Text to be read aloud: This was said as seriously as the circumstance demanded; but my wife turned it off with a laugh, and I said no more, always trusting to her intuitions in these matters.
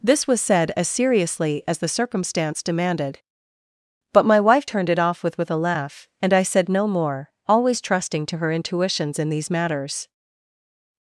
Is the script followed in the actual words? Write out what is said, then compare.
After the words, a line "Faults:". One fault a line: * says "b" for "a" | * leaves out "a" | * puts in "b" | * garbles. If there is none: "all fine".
This was said as seriously as the circumstance demanded; but my wife turned it off with with a laugh, and I said no more, always trusting to her intuitions in these matters.
Faults:
* puts in "with"